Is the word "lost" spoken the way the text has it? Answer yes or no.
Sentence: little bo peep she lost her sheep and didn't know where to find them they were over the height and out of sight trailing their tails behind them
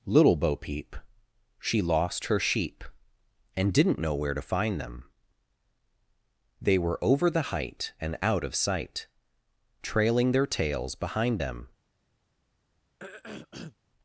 yes